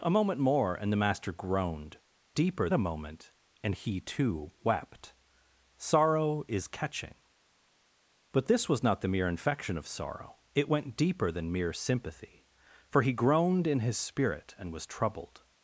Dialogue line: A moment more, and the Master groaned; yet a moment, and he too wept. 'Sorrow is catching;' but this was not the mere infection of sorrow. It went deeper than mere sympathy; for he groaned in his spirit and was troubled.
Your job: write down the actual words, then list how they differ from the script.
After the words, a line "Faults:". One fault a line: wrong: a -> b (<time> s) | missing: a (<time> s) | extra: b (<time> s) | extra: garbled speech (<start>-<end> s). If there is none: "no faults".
A moment more, and the Master groaned; deeper a moment, and he too wept. 'Sorrow is catching;' but this was not the mere infection of sorrow. It went deeper than mere sympathy; for he groaned in his spirit and was troubled.
Faults:
wrong: yet -> deeper (2.3 s)